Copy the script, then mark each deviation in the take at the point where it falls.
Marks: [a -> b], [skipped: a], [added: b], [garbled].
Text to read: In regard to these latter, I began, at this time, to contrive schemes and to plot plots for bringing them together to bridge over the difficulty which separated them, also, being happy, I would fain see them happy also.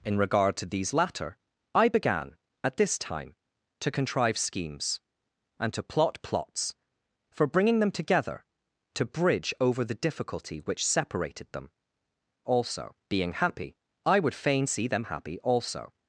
In regard to these latter, I began, at this time, to contrive schemes and to plot plots for bringing them together to bridge over the difficulty which separated them, also, being happy, I would fain see them happy also.